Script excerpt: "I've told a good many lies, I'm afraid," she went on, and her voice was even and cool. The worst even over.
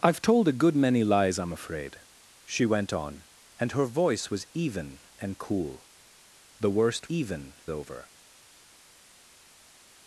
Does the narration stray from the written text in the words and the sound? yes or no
no